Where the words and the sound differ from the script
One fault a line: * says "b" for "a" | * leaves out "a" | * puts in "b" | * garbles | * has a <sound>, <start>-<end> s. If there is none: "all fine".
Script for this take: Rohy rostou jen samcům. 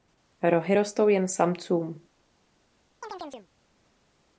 * has a chirp, 3.0-3.5 s